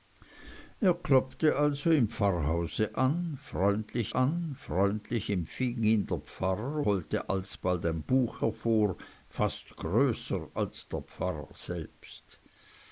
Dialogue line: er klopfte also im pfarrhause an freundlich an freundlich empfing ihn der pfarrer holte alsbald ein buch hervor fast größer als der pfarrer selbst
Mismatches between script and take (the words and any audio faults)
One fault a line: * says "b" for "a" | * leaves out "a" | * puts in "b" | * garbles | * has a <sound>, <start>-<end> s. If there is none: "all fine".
all fine